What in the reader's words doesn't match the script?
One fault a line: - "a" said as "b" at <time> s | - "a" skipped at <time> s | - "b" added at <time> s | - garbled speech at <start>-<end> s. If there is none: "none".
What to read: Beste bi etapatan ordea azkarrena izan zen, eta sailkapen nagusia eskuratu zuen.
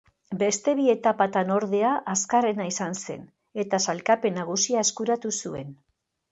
none